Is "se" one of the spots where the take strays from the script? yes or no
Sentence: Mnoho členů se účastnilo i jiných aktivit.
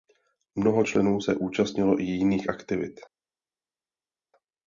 no